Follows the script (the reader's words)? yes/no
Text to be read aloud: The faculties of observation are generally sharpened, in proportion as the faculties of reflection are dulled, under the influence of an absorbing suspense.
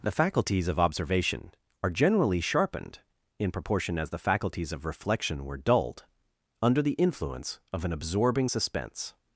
no